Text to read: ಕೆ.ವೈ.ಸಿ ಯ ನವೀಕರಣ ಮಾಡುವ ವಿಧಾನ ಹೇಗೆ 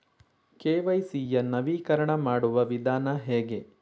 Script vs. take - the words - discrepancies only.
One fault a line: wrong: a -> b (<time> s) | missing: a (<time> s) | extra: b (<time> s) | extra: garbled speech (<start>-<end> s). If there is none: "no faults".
no faults